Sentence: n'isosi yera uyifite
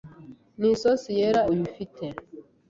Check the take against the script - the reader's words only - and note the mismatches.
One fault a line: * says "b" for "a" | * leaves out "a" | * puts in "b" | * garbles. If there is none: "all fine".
all fine